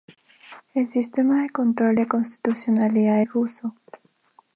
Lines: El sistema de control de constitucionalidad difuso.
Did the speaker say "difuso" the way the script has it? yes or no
yes